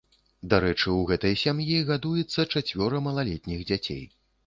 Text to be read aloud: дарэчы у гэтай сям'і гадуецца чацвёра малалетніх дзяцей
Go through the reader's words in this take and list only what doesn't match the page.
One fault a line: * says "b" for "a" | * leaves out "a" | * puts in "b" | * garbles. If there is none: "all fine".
all fine